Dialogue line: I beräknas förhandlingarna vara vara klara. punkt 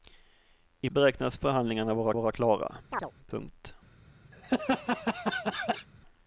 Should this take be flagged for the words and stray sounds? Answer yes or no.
yes